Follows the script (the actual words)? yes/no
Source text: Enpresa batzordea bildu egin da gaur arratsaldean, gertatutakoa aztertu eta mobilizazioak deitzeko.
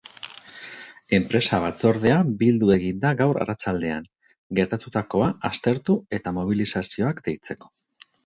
yes